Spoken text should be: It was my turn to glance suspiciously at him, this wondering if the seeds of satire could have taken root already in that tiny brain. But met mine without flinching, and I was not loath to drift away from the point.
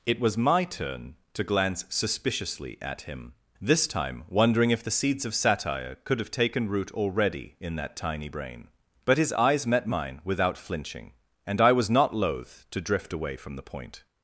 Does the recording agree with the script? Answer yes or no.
no